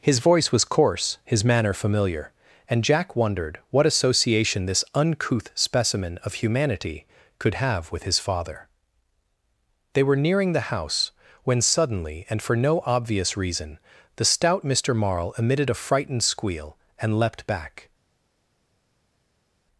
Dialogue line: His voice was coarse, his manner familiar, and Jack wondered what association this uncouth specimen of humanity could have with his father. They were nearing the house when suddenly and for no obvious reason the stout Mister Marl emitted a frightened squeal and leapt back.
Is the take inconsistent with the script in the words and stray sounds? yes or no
no